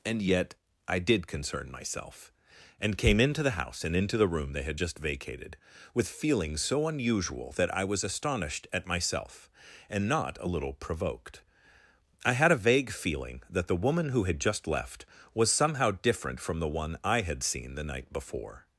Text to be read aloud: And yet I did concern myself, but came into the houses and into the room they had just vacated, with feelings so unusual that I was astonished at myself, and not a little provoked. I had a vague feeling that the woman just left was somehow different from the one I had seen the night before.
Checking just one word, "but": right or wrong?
wrong